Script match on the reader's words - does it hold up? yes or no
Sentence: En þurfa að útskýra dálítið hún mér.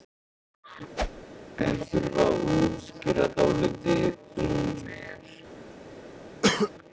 yes